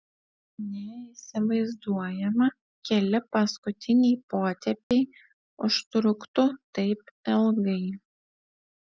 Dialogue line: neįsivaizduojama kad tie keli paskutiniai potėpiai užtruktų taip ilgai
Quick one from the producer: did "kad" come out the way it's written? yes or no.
no